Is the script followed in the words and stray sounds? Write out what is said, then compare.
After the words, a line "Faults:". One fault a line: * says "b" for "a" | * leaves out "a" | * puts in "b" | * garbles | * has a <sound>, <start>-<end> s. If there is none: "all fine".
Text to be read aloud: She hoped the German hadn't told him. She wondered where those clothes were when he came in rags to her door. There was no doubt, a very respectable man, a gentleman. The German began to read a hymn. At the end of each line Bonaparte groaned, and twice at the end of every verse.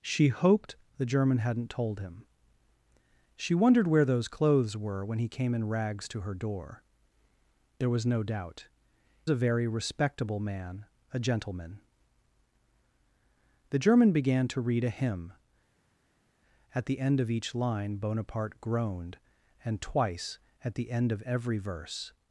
She hoped the German hadn't told him. She wondered where those clothes were when he came in rags to her door. There was no doubt, a very respectable man, a gentleman. The German began to read a hymn. At the end of each line Bonaparte groaned, and twice at the end of every verse.
Faults:
all fine